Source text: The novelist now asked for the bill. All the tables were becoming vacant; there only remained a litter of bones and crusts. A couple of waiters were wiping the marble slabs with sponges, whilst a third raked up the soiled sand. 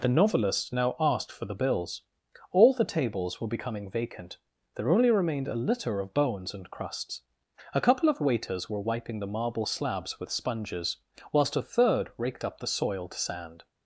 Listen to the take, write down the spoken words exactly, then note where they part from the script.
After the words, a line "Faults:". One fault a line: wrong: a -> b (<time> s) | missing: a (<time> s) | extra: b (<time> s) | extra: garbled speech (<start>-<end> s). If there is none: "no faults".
The novelist now asked for the bills. All the tables were becoming vacant; there only remained a litter of bones and crusts. A couple of waiters were wiping the marble slabs with sponges, whilst a third raked up the soiled sand.
Faults:
wrong: bill -> bills (1.5 s)